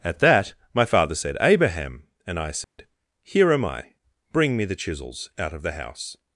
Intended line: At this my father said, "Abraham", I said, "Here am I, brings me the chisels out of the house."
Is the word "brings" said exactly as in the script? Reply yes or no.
no